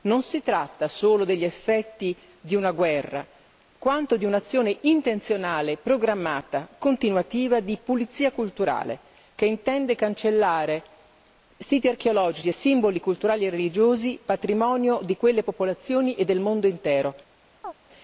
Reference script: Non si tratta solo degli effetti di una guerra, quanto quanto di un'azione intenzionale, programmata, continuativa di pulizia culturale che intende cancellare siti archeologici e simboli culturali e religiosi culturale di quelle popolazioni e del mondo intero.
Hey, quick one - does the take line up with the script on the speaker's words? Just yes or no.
no